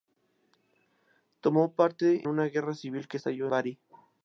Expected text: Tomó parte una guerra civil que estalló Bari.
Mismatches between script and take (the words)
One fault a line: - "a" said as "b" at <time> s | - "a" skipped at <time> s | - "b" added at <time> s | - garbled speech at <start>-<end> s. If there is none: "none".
none